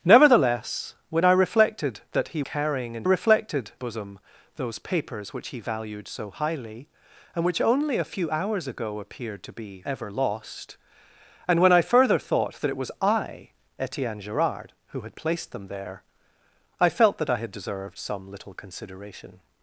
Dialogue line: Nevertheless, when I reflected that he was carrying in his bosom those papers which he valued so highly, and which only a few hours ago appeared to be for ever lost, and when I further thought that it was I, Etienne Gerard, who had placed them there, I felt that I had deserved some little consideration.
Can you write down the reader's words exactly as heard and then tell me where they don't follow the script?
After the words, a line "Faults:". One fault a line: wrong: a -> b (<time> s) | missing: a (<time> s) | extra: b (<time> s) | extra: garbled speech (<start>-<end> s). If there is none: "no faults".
Nevertheless, when I reflected that he carrying in reflected bosom those papers which he valued so highly, and which only a few hours ago appeared to be ever lost, and when I further thought that it was I, Etienne Gerard, who had placed them there, I felt that I had deserved some little consideration.
Faults:
missing: was (2.4 s)
wrong: his -> reflected (3.0 s)
missing: for (9.8 s)